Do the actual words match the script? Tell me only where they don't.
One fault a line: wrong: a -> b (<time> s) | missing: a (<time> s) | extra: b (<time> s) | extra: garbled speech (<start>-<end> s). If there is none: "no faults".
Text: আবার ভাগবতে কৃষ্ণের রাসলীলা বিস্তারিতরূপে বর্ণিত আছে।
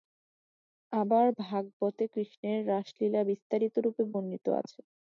no faults